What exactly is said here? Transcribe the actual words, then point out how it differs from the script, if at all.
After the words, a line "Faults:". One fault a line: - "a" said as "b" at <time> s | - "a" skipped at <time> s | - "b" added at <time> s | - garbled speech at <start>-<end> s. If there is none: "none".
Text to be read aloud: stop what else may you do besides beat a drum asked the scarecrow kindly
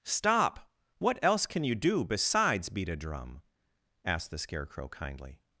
stop what else can you do besides beat a drum asked the scarecrow kindly
Faults:
- "may" said as "can" at 1.4 s